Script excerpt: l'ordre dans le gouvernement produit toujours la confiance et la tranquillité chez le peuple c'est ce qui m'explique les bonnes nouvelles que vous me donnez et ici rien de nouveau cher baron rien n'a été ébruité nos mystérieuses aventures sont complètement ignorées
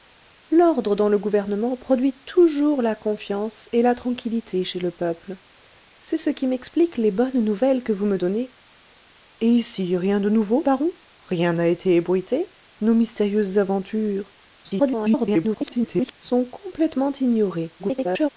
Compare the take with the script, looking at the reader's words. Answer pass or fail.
fail